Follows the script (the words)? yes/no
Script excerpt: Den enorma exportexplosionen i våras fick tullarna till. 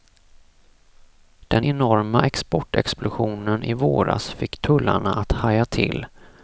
no